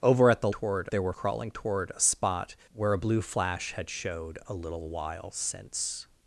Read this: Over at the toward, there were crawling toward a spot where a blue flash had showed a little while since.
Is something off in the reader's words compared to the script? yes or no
no